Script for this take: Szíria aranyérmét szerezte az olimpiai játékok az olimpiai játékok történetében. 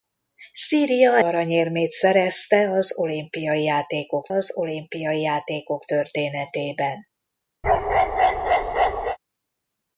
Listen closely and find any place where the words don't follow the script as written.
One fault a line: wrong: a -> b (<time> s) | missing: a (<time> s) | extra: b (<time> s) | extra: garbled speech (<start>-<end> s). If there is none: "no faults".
no faults